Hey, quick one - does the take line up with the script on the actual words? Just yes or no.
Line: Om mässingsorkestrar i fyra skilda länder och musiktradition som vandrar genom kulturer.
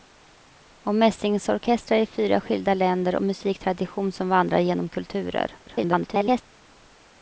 no